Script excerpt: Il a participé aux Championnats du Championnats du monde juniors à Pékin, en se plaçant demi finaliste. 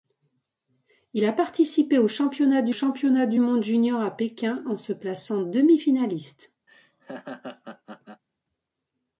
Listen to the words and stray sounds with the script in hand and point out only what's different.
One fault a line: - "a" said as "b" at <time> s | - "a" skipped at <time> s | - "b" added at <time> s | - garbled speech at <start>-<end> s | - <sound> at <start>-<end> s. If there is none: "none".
- laugh at 6.7-8.2 s